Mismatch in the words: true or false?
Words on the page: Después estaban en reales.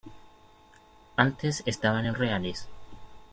true